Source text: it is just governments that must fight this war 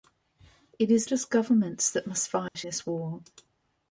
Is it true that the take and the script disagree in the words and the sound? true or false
true